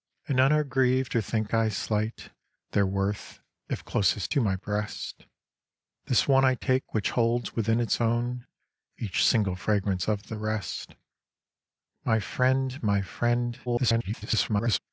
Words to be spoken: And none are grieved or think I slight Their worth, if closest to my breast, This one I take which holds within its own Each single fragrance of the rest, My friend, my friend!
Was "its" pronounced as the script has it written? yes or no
yes